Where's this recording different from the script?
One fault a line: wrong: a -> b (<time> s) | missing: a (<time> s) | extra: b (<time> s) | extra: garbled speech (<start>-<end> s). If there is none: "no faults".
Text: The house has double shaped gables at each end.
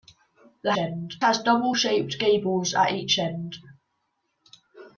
wrong: house -> end (0.8 s)